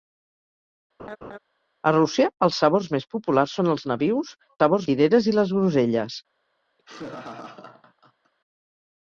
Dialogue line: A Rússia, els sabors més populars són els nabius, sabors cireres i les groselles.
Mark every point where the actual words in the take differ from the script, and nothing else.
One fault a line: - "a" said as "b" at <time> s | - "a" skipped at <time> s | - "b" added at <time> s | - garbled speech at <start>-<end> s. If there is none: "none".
none